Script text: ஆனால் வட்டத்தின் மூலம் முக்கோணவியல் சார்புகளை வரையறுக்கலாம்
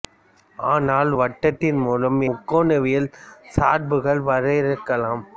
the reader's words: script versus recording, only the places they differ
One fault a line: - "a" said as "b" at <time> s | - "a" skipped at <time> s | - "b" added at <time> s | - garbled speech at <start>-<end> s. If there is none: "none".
none